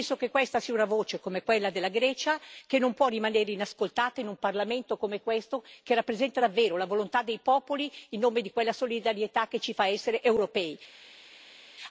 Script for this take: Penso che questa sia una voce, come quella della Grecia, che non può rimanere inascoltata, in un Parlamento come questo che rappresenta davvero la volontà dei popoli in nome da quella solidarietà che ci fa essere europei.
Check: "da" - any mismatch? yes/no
yes